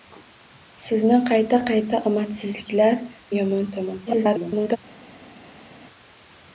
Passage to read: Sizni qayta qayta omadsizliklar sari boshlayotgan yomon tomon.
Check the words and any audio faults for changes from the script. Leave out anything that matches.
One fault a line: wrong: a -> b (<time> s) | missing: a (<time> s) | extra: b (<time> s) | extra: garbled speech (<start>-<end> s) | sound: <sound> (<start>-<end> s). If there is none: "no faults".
missing: sari boshlayotgan (3.0 s)
extra: garbled speech (4.1-4.8 s)